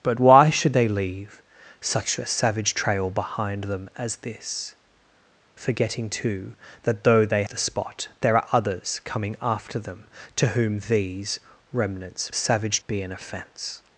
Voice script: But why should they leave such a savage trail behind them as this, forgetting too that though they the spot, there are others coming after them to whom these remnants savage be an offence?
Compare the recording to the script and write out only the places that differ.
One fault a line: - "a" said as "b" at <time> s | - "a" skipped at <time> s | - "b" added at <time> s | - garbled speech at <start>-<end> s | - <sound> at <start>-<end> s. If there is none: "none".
none